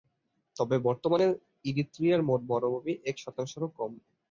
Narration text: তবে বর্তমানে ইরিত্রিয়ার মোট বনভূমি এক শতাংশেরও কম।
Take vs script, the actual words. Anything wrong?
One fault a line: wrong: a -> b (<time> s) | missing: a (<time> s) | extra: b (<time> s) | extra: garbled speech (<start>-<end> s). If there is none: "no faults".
no faults